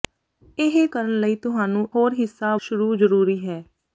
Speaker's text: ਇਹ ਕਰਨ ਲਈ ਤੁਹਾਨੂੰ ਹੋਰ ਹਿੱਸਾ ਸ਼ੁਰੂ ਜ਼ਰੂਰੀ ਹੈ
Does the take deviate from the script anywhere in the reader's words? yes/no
no